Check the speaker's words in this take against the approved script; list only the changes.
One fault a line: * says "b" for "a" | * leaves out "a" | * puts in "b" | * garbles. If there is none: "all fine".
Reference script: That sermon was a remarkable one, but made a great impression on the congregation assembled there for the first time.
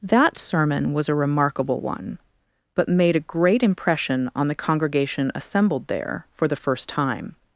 all fine